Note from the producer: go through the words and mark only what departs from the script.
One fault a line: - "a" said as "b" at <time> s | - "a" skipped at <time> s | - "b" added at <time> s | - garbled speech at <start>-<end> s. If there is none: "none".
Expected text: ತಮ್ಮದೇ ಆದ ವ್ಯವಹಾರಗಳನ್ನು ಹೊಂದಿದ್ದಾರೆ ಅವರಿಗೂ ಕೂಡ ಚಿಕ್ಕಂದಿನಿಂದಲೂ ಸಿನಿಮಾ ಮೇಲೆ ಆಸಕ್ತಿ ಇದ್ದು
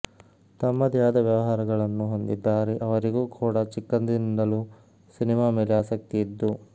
none